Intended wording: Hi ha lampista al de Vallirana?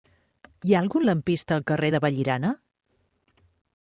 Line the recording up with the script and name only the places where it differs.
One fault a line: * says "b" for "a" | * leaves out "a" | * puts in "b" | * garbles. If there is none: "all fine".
* puts in "algun"
* puts in "carrer"